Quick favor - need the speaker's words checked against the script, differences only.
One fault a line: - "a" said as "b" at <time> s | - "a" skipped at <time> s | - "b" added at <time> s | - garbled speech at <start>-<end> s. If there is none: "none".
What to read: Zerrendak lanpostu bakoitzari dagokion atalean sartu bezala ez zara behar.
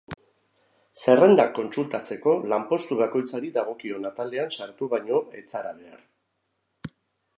- "kontsultatzeko" added at 1.6 s
- "bezala" said as "baino" at 5.0 s